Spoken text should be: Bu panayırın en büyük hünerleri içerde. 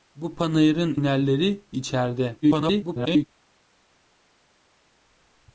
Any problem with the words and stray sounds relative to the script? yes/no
yes